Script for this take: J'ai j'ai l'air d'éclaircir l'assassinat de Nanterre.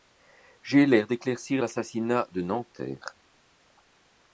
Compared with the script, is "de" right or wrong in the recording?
right